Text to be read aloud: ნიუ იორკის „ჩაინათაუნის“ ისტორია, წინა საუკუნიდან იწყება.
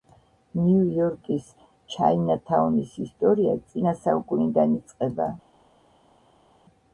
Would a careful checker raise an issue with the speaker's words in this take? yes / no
no